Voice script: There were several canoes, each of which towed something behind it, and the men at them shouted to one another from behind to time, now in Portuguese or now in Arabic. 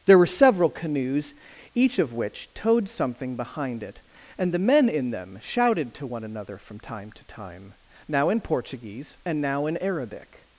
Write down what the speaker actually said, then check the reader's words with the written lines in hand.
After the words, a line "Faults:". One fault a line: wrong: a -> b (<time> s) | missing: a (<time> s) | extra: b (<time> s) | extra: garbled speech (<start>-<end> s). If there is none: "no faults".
There were several canoes, each of which towed something behind it, and the men in them shouted to one another from time to time, now in Portuguese and now in Arabic.
Faults:
wrong: at -> in (4.9 s)
wrong: behind -> time (6.8 s)
wrong: or -> and (9.3 s)